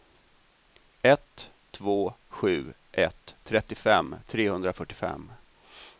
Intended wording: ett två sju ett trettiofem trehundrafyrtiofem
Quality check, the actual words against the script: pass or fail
pass